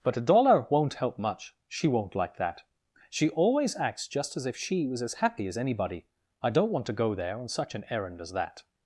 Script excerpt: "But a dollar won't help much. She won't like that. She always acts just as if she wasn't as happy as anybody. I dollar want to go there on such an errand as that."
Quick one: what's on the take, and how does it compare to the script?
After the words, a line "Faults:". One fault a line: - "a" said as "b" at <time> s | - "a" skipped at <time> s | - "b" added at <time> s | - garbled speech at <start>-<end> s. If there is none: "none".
"But a dollar won't help much. She won't like that. She always acts just as if she was as happy as anybody. I don't want to go there on such an errand as that."
Faults:
- "wasn't" said as "was" at 4.9 s
- "dollar" said as "don't" at 6.5 s